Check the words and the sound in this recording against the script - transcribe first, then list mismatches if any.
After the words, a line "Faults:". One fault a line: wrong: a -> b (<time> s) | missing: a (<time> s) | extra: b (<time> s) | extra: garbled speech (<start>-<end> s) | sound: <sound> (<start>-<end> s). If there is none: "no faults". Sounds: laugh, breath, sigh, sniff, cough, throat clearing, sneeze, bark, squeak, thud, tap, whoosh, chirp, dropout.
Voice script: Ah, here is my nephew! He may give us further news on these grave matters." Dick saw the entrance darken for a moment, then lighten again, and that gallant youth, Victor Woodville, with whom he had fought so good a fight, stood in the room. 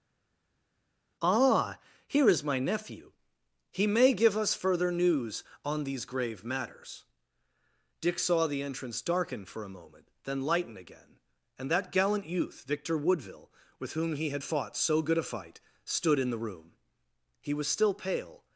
Ah, here is my nephew! He may give us further news on these grave matters." Dick saw the entrance darken for a moment, then lighten again, and that gallant youth, Victor Woodville, with whom he had fought so good a fight, stood in the room. He was still pale
Faults:
extra: He was still pale (17.4 s)